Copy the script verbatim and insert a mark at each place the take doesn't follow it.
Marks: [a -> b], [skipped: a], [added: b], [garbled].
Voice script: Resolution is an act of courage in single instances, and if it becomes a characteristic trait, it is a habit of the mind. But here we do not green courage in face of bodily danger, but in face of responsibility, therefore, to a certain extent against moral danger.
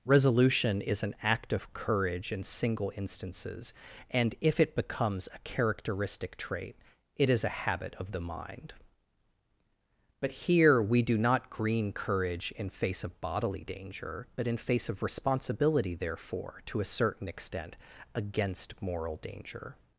Resolution is an act of courage in single instances, and if it becomes a characteristic trait, it is a habit of the mind. But here we do not green courage in face of bodily danger, but in face of responsibility, therefore, to a certain extent against moral danger.